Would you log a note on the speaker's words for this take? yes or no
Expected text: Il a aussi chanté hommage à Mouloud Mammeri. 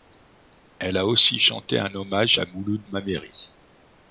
yes